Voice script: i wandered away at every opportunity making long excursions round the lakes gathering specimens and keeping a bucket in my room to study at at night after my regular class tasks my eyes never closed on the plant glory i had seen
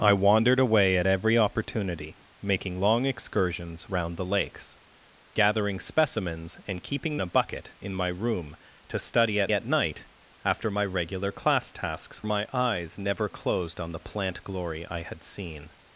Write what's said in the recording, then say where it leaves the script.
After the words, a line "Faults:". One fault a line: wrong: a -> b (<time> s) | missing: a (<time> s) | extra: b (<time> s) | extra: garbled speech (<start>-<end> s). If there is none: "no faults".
i wandered away at every opportunity making long excursions round the lakes gathering specimens and keeping a bucket in my room to study at at night after my regular class tasks my eyes never closed on the plant glory i had seen
Faults:
no faults